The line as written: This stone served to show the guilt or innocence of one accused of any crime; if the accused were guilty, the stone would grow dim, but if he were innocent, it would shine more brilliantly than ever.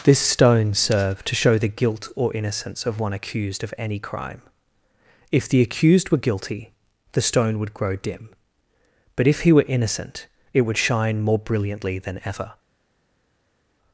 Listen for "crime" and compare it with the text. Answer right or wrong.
right